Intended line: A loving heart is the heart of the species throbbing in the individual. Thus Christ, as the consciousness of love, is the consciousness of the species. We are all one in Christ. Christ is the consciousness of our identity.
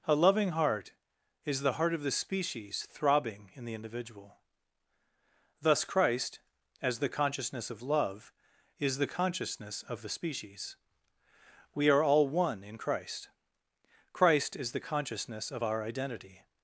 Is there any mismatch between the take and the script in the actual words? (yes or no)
no